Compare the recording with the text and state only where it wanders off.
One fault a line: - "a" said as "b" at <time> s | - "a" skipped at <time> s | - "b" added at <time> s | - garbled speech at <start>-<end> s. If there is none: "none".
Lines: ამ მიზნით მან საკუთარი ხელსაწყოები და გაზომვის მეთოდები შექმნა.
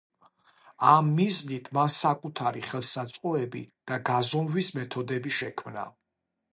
none